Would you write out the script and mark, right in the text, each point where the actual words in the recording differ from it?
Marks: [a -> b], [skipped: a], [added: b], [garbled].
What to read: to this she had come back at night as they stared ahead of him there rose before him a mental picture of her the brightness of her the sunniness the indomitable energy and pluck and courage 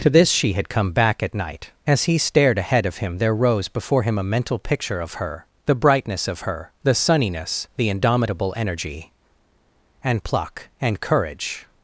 to this she had come back at night as [they -> he] stared ahead of him there rose before him a mental picture of her the brightness of her the sunniness the indomitable energy and pluck and courage